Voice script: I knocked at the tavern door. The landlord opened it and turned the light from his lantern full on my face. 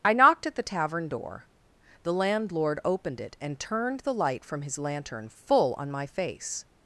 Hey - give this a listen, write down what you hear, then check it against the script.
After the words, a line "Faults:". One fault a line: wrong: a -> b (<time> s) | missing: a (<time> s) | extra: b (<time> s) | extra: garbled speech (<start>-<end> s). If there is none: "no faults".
I knocked at the tavern door. The landlord opened it and turned the light from his lantern full on my face.
Faults:
no faults